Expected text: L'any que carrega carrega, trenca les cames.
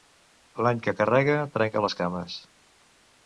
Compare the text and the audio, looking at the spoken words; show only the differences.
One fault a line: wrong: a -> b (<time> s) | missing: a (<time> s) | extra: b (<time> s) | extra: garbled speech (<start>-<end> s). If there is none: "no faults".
missing: carrega (1.4 s)